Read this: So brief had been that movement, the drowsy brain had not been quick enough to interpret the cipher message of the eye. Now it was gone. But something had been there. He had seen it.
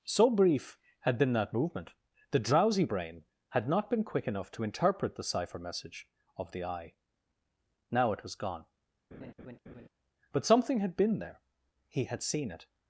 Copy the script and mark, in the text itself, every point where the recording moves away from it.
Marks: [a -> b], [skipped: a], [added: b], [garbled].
So brief had been that movement, the drowsy brain had not been quick enough to interpret the cipher message of the eye. Now it was gone. But something had been there. He had seen it.